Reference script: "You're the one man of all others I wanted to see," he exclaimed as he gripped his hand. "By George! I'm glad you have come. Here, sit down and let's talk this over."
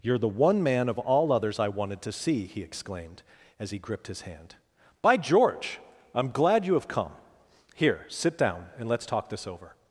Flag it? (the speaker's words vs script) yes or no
no